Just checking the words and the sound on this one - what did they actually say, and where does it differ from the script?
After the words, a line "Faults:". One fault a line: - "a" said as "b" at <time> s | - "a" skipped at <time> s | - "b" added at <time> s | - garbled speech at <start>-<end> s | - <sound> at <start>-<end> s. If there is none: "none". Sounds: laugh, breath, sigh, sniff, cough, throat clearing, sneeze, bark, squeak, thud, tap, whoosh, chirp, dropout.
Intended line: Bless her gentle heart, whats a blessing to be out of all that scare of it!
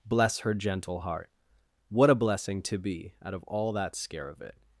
Bless her gentle heart, what a blessing to be out of all that scare of it!
Faults:
- "whats" said as "what" at 1.9 s